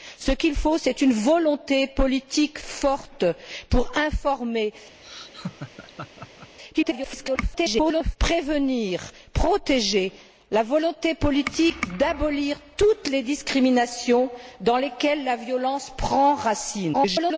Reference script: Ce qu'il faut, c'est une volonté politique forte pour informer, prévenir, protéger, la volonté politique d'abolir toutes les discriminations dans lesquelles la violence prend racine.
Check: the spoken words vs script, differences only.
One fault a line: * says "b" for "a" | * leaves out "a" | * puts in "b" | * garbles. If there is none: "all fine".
* garbles
* garbles